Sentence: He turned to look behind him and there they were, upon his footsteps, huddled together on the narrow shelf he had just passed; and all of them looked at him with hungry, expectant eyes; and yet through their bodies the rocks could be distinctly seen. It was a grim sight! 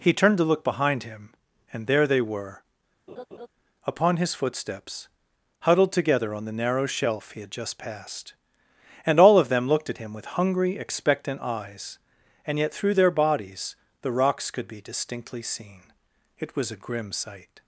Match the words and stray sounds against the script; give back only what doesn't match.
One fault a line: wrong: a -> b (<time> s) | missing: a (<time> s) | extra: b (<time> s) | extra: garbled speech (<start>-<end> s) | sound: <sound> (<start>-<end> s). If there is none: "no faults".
sound: laugh (3.1-3.5 s)